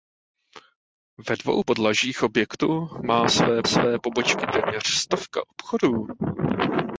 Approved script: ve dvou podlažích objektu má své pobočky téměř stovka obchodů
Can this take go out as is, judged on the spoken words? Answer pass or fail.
fail